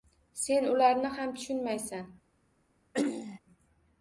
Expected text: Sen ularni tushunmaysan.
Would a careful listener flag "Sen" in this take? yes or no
no